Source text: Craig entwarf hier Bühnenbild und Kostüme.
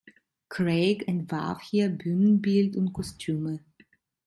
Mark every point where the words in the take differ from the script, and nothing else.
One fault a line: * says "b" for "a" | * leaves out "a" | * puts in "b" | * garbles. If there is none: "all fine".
all fine